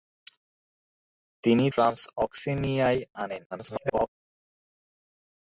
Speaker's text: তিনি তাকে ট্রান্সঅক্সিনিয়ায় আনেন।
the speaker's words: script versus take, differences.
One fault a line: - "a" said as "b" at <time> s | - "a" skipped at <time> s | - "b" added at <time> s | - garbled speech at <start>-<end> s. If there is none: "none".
- "তাকে" skipped at 1.6 s
- garbled speech at 3.5-4.1 s